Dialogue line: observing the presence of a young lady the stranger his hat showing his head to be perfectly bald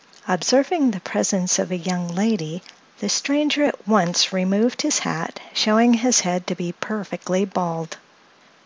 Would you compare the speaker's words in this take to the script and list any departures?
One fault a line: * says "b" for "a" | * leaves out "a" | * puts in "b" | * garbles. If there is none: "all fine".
* puts in "at once removed"